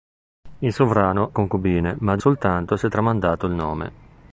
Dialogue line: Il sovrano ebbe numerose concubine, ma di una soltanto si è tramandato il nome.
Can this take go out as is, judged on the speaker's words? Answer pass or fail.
fail